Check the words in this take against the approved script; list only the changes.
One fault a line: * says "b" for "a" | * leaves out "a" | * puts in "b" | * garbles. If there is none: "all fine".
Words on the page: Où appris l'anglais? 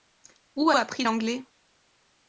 all fine